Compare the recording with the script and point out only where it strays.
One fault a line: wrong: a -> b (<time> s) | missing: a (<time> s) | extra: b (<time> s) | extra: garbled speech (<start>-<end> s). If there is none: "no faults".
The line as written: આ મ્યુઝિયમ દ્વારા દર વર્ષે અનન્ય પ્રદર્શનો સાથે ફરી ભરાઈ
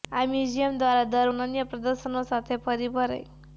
missing: વર્ષે (1.3 s)